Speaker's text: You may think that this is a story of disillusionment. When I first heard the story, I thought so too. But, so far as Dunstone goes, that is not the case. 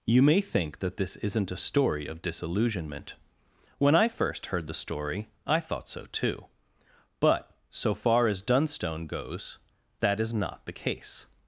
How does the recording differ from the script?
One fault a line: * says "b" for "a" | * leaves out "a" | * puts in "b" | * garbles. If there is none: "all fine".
* says "isn't" for "is"